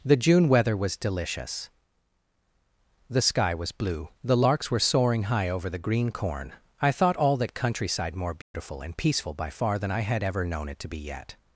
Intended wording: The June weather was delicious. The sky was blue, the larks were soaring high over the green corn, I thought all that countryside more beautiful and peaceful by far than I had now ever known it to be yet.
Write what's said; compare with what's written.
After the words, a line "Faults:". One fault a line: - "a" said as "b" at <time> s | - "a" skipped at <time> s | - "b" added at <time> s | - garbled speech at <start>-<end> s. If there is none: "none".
The June weather was delicious. The sky was blue, the larks were soaring high over the green corn, I thought all that countryside more beautiful and peaceful by far than I had ever known it to be yet.
Faults:
- "now" skipped at 10.2 s